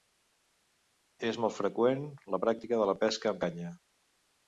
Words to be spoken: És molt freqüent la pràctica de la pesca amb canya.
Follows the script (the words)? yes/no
yes